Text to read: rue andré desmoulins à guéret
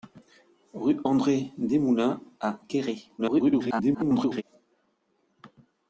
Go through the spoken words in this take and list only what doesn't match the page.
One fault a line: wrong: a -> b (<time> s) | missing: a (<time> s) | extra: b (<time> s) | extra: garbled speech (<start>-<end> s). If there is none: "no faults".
extra: garbled speech (3.2-4.4 s)